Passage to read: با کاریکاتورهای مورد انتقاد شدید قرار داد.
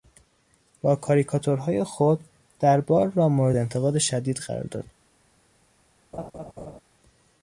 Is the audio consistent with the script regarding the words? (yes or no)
no